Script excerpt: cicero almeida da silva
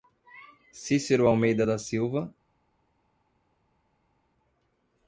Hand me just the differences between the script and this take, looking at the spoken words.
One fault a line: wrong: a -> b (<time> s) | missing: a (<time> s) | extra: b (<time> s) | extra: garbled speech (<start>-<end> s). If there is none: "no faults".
no faults